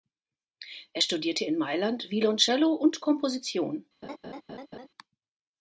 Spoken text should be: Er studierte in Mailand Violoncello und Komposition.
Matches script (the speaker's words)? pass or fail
pass